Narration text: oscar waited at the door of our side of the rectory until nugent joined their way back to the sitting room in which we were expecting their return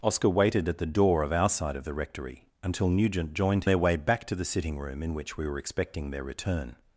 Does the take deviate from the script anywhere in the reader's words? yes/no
no